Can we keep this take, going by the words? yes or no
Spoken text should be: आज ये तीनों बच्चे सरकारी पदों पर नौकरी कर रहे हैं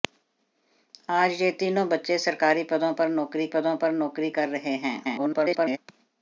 no